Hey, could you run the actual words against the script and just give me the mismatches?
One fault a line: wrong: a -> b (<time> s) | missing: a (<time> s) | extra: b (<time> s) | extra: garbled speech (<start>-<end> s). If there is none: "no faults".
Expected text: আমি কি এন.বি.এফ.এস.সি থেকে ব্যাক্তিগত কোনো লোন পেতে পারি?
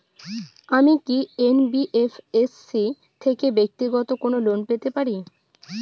no faults